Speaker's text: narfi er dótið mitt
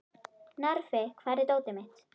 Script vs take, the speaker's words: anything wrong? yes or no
yes